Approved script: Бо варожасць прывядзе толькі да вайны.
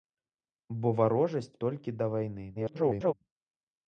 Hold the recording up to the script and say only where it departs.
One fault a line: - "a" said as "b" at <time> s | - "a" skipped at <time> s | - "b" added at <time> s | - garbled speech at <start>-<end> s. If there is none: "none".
- "прывядзе" skipped at 1.5 s
- garbled speech at 2.5-3.1 s